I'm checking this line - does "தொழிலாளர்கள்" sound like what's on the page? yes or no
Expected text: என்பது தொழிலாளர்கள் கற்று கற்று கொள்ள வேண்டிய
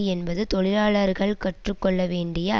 yes